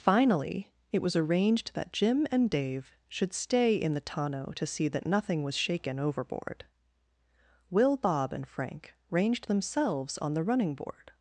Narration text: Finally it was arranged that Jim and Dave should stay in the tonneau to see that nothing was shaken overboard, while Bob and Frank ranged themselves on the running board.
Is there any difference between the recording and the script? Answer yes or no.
yes